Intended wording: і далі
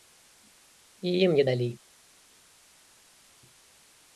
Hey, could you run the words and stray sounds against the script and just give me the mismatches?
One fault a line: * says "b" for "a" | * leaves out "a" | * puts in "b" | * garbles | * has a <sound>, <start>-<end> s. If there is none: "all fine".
* puts in "ім не"